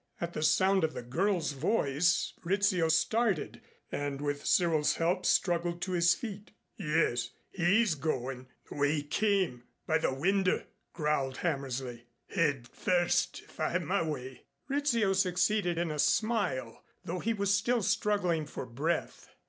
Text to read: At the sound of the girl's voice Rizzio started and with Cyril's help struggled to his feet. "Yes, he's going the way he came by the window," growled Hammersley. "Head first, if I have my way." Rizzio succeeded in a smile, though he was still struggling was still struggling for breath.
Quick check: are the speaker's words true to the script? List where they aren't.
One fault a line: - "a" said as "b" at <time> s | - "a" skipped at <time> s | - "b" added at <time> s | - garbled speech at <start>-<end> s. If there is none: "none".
- "was still struggling" skipped at 18.5 s